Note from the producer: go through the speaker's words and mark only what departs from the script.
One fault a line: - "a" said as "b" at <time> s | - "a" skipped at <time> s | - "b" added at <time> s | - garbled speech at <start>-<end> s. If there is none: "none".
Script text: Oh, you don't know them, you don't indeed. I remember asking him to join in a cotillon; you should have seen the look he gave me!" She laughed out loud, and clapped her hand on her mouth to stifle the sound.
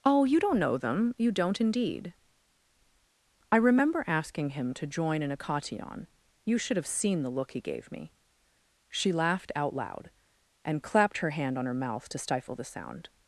none